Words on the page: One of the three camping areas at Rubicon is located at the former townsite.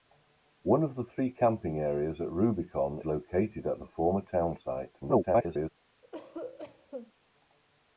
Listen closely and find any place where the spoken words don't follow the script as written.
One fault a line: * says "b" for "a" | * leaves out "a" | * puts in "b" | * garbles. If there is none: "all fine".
* leaves out "is"
* garbles